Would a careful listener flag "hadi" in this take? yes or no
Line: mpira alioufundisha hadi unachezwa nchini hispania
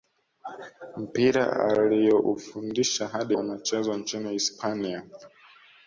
no